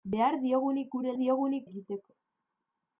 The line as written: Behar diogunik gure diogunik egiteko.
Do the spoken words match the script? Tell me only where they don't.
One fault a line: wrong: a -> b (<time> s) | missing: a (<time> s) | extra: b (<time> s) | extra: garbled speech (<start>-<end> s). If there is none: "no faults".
no faults